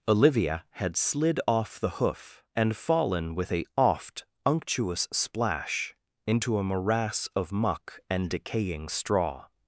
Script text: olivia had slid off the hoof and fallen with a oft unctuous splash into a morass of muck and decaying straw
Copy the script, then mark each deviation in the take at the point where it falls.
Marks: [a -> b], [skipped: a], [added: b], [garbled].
olivia had slid off the hoof and fallen with a oft unctuous splash into a morass of muck and decaying straw